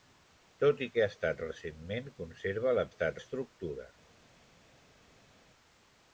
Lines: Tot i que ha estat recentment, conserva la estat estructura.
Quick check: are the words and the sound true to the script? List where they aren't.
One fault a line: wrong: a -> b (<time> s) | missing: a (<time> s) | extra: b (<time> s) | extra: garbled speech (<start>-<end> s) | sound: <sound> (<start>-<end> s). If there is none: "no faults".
no faults